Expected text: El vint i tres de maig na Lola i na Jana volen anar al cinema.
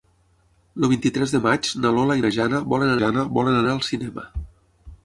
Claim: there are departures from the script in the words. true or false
true